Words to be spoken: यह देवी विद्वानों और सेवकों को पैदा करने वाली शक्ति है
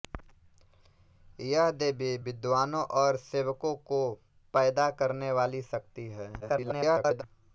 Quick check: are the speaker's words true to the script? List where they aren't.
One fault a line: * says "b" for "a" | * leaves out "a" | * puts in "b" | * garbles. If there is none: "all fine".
* garbles